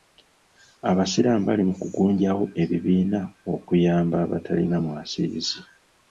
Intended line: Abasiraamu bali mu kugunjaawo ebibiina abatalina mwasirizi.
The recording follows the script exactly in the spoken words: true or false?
false